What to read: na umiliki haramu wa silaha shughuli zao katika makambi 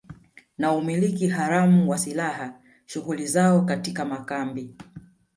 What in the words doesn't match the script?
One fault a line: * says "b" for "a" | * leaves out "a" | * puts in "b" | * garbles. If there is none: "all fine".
all fine